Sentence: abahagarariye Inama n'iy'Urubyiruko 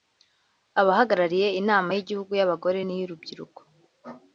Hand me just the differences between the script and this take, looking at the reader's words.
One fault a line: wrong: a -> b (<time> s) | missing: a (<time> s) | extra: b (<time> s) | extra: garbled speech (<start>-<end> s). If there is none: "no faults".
extra: y'Igihugu y'Abagore (1.9 s)